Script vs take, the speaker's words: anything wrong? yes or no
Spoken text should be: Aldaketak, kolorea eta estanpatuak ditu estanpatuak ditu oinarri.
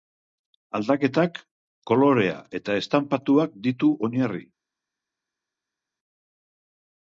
yes